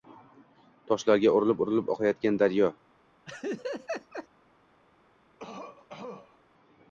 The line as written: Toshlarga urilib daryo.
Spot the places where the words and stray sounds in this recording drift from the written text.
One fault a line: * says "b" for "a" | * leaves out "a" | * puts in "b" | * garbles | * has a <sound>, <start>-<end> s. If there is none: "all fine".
* puts in "urilib oqayotgan"
* has a laugh, 3.3-4.3 s
* has a cough, 5.4-6.4 s